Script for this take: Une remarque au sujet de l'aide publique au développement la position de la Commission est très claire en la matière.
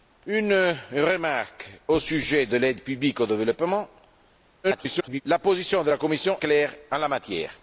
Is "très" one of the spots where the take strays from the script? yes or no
yes